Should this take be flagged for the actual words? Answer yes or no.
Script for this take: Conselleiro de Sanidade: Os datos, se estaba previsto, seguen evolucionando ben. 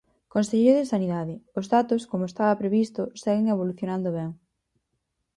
yes